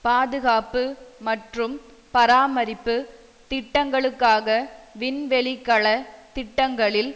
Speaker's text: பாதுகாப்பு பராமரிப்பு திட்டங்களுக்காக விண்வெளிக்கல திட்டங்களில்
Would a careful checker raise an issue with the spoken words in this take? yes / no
yes